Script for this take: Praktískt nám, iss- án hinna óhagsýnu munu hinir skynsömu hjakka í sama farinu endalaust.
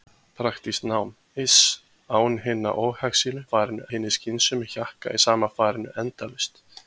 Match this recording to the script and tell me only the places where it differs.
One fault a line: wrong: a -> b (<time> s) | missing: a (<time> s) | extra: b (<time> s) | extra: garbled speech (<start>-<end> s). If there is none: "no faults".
wrong: munu -> farinu (3.5 s)